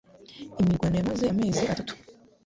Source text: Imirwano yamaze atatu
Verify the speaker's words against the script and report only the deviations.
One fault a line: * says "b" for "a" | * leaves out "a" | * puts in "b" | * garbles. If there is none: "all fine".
* puts in "amezi"